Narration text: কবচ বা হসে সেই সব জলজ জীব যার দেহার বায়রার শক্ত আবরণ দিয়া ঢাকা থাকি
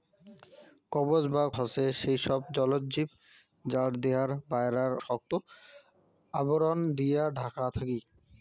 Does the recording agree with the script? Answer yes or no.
yes